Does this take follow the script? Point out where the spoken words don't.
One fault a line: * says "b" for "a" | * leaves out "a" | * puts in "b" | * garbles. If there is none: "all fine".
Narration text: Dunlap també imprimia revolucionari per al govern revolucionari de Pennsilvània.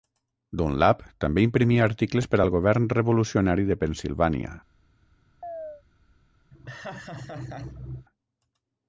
* says "articles" for "revolucionari"